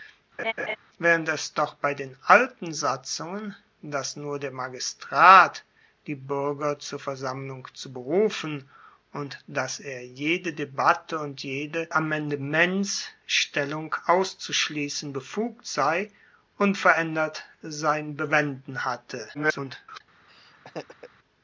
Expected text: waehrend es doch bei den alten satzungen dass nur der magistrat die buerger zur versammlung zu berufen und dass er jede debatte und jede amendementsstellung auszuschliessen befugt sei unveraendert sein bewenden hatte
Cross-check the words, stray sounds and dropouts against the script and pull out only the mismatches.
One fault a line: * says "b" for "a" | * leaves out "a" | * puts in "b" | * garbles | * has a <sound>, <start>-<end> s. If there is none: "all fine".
* has a laugh, 0.4-0.8 s
* garbles
* has a laugh, 20.3-21.1 s